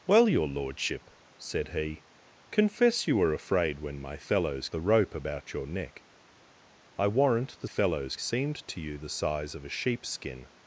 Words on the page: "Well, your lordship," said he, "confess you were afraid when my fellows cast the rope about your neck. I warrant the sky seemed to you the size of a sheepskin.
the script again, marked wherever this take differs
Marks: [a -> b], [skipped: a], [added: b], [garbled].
"Well, your lordship," said he, "confess you were afraid when my fellows [skipped: cast] the rope about your neck. I warrant the [sky -> fellows] seemed to you the size of a sheepskin.